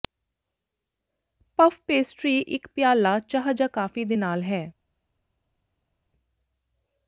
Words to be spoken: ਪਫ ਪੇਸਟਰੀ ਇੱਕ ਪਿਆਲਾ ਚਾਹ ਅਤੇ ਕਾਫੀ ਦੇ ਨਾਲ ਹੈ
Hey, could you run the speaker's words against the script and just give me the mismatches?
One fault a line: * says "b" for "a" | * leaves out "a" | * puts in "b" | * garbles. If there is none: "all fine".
* says "ਜਾਂ" for "ਅਤੇ"